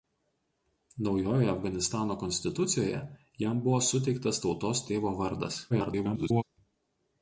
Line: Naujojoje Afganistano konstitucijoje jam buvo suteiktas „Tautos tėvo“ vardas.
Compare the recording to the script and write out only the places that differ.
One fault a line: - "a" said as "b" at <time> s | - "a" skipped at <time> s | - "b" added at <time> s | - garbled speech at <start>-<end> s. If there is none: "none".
- garbled speech at 5.7-6.4 s